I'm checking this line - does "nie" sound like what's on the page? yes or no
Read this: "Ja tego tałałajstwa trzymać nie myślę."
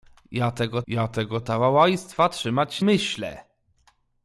no